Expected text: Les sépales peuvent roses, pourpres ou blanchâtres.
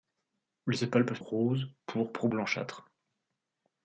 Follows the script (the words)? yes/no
yes